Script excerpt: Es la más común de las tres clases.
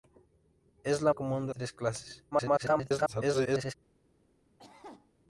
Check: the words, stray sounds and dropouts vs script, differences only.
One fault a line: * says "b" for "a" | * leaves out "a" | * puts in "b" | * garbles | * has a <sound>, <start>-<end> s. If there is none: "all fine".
* leaves out "más"
* leaves out "las"
* garbles
* has a cough, 4.6-5.1 s